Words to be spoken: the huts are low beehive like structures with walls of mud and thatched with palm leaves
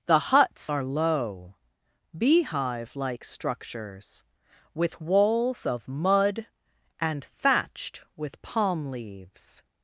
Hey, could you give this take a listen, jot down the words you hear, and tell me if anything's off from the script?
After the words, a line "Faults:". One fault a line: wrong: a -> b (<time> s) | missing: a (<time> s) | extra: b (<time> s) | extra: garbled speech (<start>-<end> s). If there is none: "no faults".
the huts are low beehive like structures with walls of mud and thatched with palm leaves
Faults:
no faults